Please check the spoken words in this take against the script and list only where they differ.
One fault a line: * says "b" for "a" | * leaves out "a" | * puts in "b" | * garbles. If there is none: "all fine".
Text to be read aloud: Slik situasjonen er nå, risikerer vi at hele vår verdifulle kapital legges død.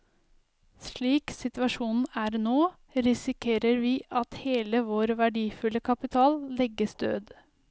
all fine